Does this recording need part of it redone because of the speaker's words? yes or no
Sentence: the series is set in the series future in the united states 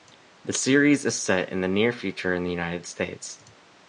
yes